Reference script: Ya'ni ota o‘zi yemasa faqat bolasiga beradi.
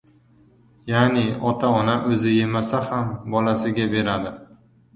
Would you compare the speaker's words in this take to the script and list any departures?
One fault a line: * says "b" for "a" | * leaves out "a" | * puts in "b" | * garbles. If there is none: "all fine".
* puts in "ona"
* says "ham" for "faqat"